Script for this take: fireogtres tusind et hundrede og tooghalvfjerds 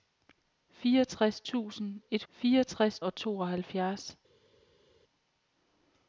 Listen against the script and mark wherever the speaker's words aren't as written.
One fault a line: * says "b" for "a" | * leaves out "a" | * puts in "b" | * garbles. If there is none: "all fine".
* says "fireogtres" for "hundrede"